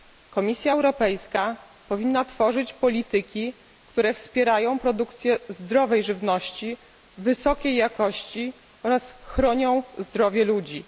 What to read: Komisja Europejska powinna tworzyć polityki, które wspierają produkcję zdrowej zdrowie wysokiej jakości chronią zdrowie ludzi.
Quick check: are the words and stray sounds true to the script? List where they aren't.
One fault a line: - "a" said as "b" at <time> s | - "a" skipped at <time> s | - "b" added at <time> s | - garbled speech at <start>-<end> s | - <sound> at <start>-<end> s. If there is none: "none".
- "zdrowie" said as "żywności" at 6.0 s
- "oraz" added at 8.8 s